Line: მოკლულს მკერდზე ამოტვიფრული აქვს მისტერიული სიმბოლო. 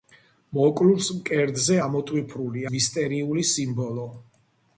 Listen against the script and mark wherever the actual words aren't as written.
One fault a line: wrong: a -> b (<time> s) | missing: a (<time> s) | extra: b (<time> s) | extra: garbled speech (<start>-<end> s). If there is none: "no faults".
missing: აქვს (2.7 s)